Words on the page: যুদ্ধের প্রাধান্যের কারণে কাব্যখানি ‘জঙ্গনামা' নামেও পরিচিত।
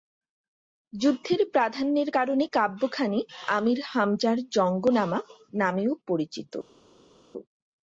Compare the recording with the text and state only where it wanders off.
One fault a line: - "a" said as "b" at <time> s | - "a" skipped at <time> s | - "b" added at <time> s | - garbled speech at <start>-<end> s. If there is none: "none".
- "আমীর হামজার" added at 3.5 s